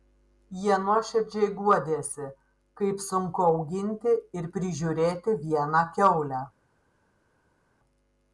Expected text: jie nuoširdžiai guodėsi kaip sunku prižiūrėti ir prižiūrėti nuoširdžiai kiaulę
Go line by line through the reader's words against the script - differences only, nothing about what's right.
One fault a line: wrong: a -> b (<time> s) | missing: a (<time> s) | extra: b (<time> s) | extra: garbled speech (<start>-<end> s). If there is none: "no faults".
wrong: prižiūrėti -> auginti (3.5 s)
wrong: nuoširdžiai -> vieną (5.5 s)